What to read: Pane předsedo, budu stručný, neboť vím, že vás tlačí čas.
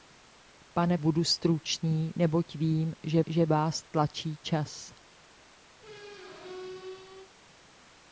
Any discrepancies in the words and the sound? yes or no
yes